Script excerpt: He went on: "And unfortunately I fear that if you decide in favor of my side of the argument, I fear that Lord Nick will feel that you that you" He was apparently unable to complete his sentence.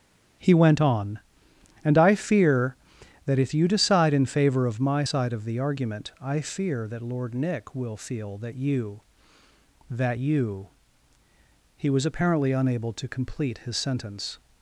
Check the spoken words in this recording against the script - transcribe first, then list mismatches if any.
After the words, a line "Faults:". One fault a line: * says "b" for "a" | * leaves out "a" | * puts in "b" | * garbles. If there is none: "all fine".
He went on: "And I fear that if you decide in favor of my side of the argument, I fear that Lord Nick will feel that you that you" He was apparently unable to complete his sentence.
Faults:
* leaves out "unfortunately"